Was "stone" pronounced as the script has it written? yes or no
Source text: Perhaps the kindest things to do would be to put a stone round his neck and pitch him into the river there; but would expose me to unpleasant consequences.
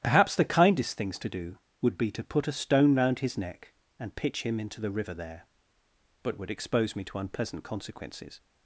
yes